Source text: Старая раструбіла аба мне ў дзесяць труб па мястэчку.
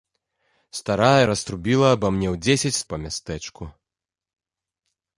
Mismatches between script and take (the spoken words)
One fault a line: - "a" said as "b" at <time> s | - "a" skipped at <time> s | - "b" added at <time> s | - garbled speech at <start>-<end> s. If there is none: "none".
- "труб" skipped at 2.8 s